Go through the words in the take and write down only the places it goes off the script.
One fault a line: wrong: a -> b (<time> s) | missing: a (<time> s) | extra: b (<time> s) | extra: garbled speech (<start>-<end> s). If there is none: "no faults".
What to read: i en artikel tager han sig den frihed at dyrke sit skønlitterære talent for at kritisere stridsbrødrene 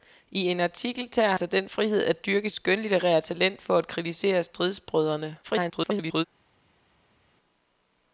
missing: han (1.4 s)
missing: sit (2.5 s)
extra: garbled speech (5.4-6.2 s)